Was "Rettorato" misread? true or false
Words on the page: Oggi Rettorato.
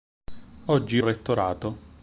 false